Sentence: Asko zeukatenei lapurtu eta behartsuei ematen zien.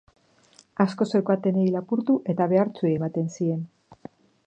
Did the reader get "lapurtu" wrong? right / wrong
right